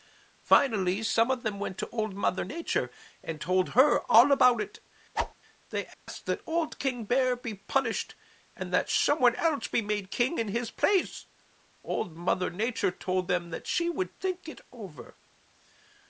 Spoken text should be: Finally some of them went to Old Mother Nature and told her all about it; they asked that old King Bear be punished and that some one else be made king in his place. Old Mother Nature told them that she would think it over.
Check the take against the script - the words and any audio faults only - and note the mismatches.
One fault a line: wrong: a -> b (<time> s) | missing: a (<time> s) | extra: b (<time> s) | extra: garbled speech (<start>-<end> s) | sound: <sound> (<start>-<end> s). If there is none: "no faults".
sound: whoosh (5.1-5.3 s)
sound: dropout (5.9-6.1 s)